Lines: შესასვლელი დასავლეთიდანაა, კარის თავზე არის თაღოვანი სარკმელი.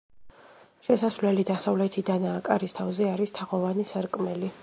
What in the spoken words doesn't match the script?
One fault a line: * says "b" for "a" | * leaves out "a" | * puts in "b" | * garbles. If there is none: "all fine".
all fine